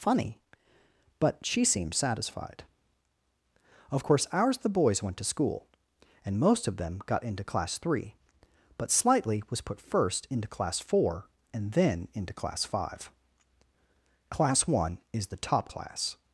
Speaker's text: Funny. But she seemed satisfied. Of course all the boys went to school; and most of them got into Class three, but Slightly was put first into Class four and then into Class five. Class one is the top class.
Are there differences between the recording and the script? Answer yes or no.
yes